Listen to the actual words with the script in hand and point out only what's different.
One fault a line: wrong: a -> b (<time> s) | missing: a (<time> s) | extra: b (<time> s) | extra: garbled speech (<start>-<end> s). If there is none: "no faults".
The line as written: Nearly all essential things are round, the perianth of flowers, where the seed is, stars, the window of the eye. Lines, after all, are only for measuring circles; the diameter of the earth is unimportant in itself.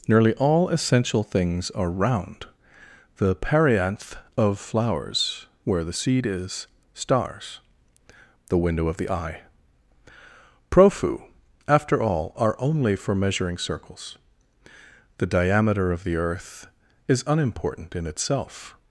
wrong: Lines -> Profu (10.7 s)